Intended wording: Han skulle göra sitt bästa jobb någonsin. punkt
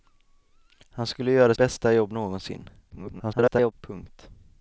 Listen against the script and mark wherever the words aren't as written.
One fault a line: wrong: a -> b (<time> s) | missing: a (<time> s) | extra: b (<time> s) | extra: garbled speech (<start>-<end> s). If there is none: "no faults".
missing: sitt (1.5 s)
extra: garbled speech (2.9-3.7 s)